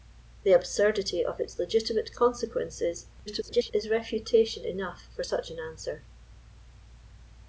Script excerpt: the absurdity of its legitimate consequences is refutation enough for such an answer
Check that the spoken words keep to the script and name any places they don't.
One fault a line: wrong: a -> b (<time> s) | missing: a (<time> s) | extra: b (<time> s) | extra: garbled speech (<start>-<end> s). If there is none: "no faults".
extra: garbled speech (3.3-3.7 s)